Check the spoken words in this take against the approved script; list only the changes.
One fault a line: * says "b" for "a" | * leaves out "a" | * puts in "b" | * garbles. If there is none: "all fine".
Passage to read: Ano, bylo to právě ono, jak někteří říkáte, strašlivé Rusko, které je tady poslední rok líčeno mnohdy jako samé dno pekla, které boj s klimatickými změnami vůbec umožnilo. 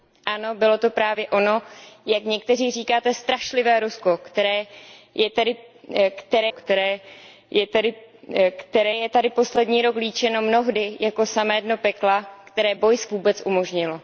* puts in "které"
* leaves out "klimatickými změnami"